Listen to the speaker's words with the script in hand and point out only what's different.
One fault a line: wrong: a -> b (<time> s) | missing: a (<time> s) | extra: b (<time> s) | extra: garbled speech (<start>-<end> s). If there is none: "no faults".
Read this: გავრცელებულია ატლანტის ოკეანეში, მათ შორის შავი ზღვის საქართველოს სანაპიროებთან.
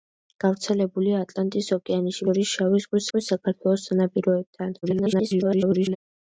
missing: მათ (2.3 s)
extra: ზღვის (3.1 s)
extra: garbled speech (4.8-6.0 s)